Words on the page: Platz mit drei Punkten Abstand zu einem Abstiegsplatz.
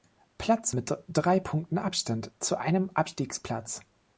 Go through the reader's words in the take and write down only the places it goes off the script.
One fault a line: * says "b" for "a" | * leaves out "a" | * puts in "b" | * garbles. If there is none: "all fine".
all fine